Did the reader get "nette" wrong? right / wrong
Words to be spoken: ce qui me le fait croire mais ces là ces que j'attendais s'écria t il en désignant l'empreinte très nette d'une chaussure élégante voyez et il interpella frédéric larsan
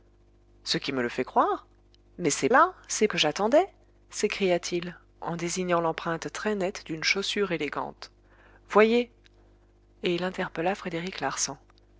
right